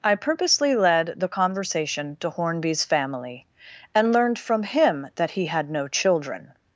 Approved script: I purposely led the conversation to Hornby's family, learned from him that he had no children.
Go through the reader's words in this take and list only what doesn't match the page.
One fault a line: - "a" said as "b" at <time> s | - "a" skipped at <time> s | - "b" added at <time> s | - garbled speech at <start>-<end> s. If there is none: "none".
- "and" added at 3.9 s